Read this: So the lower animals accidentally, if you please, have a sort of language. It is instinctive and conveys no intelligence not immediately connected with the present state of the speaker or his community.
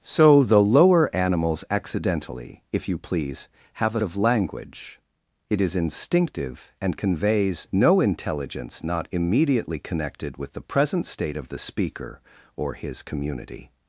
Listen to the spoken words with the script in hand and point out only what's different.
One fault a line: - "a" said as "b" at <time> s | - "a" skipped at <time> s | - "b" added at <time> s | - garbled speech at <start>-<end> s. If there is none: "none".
- "sort" skipped at 4.0 s